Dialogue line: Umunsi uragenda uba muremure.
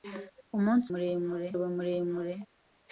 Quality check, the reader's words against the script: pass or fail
fail